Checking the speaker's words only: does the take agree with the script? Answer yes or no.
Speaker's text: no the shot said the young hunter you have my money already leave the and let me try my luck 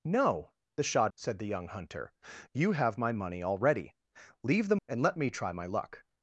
yes